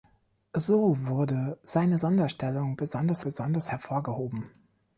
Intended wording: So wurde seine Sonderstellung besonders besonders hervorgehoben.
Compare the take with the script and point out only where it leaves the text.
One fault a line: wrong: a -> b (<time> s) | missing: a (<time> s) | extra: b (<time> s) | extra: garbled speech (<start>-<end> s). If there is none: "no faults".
no faults